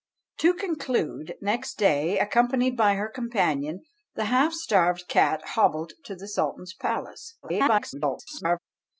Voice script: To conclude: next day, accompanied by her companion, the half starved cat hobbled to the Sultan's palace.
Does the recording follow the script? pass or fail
fail